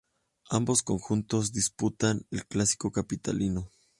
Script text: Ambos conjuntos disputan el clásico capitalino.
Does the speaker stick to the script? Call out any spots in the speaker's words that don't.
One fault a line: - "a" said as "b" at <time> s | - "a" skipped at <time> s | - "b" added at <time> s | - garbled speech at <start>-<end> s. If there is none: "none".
none